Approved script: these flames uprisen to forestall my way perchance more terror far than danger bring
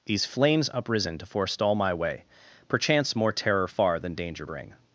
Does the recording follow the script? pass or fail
pass